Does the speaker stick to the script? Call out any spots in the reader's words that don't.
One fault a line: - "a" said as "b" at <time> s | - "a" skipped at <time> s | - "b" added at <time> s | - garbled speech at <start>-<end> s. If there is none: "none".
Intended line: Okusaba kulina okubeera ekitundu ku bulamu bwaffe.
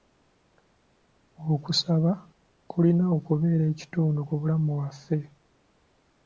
none